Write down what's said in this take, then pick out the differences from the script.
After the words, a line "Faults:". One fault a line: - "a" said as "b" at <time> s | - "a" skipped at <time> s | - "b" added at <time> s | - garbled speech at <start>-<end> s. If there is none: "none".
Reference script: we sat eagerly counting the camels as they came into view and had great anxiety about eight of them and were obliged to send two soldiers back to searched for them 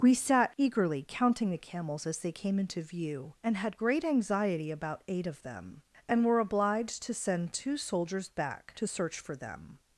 we sat eagerly counting the camels as they came into view and had great anxiety about eight of them and were obliged to send two soldiers back to search for them
Faults:
- "searched" said as "search" at 8.8 s